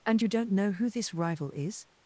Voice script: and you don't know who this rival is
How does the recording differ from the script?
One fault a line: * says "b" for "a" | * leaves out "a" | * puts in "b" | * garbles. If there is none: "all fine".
all fine